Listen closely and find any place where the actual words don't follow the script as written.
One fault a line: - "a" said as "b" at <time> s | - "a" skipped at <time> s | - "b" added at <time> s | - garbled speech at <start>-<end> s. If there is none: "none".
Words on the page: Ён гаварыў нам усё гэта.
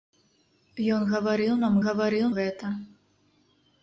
- "усё" said as "гаварыў" at 1.9 s